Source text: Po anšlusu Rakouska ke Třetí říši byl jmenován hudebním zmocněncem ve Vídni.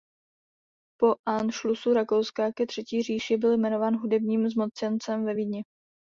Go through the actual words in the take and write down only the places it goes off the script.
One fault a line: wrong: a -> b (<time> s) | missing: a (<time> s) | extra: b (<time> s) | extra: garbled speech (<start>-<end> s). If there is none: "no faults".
no faults